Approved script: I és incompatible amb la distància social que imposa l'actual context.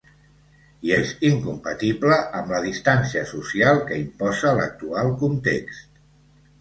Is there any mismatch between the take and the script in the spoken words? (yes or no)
no